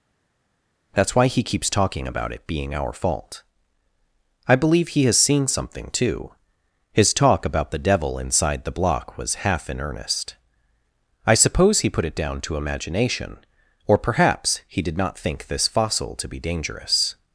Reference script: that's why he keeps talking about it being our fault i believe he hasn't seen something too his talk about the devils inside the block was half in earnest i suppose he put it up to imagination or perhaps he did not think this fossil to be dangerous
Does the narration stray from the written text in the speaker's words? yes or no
yes